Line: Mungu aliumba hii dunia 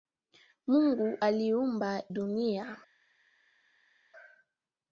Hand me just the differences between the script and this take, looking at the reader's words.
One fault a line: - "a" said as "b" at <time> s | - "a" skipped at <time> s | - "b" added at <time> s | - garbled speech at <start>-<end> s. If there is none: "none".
- "hii" skipped at 2.0 s